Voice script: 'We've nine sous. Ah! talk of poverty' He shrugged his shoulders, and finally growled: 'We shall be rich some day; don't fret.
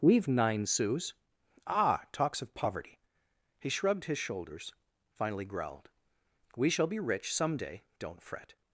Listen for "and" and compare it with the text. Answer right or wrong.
wrong